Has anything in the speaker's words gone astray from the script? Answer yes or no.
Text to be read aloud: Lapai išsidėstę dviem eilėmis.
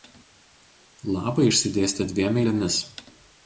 no